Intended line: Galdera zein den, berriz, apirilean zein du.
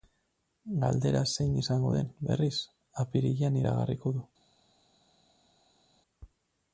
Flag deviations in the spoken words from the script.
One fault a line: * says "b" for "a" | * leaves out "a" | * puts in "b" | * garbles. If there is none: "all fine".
* puts in "izango"
* says "iragarriko" for "zein"